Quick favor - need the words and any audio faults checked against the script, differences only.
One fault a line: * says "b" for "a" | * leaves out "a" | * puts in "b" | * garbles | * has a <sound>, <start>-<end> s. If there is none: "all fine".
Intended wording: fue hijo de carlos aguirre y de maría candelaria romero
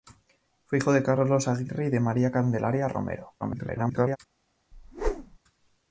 * garbles
* has a whoosh, 4.7-5.4 s